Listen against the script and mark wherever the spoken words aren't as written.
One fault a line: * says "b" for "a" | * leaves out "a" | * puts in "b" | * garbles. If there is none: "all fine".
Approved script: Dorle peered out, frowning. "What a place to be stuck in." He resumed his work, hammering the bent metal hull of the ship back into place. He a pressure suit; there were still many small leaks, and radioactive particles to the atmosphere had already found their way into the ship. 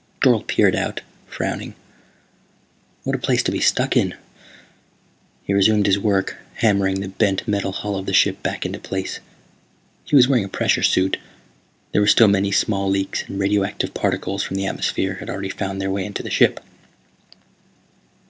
* puts in "was wearing"
* says "from" for "to"